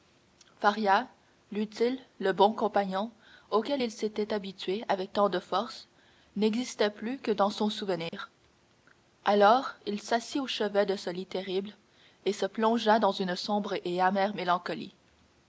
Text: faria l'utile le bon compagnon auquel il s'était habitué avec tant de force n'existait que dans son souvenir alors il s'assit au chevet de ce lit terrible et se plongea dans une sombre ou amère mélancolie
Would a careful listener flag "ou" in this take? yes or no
yes